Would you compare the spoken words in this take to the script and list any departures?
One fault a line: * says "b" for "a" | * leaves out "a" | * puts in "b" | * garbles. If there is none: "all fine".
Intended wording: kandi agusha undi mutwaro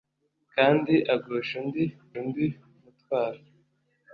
* puts in "undi"